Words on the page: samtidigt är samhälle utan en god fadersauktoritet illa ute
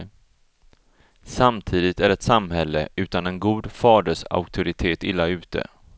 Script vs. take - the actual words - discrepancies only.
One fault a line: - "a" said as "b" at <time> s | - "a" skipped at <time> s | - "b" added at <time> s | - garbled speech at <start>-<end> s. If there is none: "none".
- "ett" added at 2.1 s